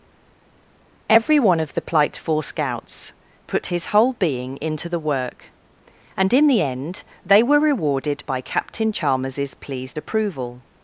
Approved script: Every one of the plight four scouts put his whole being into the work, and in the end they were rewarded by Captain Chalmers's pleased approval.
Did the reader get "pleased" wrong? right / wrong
right